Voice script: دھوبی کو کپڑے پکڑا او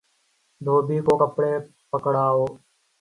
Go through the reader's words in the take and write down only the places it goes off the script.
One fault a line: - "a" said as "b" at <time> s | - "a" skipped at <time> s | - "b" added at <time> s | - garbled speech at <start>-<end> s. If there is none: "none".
none